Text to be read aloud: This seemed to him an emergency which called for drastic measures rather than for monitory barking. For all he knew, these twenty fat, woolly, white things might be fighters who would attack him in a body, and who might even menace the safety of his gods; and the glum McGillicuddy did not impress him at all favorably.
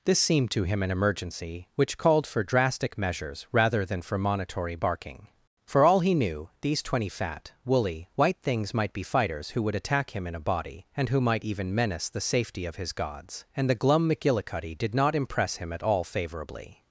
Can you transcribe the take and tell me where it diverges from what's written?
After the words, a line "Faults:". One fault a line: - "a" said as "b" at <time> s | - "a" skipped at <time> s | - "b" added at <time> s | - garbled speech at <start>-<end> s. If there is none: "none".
This seemed to him an emergency which called for drastic measures rather than for monitory barking. For all he knew, these twenty fat, woolly, white things might be fighters who would attack him in a body, and who might even menace the safety of his gods; and the glum McGillicuddy did not impress him at all favorably.
Faults:
none